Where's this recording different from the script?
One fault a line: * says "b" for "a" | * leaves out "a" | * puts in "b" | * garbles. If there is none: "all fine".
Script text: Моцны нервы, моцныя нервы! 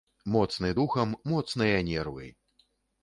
* says "духам" for "нервы"